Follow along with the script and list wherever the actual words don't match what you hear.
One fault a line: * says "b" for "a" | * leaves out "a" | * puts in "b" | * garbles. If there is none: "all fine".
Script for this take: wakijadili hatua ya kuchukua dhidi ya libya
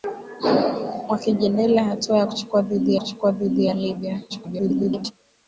* puts in "kuchukua dhidi"
* garbles